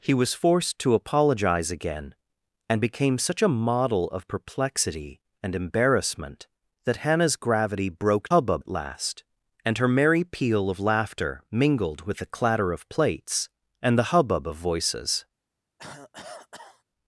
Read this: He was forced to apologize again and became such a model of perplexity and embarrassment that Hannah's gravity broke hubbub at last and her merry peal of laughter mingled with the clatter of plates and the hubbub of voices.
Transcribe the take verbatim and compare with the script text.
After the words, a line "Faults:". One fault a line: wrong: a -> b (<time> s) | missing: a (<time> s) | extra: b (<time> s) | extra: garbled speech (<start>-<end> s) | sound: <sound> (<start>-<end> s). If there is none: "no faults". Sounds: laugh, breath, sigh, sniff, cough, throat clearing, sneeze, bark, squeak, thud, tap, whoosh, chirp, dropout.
He was forced to apologize again and became such a model of perplexity and embarrassment that Hannah's gravity broke hubbub at last and her merry peal of laughter mingled with the clatter of plates and the hubbub of voices.
Faults:
sound: cough (15.8-16.8 s)